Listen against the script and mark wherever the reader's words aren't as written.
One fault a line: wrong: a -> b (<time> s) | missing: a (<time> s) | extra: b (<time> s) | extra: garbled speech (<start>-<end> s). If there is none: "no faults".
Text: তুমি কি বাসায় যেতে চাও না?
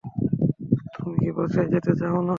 no faults